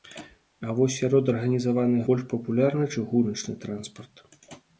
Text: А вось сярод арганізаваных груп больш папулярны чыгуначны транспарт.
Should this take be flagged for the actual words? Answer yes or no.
yes